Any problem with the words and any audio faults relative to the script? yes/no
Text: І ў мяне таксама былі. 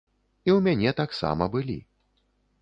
no